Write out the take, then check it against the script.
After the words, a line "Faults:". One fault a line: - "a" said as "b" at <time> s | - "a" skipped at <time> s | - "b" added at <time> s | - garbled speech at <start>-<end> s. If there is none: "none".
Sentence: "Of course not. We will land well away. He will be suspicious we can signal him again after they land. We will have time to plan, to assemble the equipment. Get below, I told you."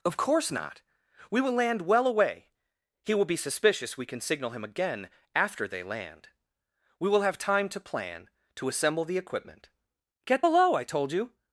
"Of course not. We will land well away. He will be suspicious we can signal him again after they land. We will have time to plan, to assemble the equipment. Get below, I told you."
Faults:
none